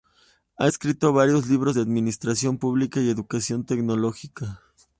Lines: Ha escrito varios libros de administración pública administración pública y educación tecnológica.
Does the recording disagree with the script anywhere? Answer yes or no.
yes